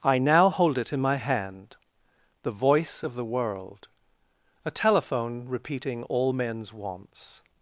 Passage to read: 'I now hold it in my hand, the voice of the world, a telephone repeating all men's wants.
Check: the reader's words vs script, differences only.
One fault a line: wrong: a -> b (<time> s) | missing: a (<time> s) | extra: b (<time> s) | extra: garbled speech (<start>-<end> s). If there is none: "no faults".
no faults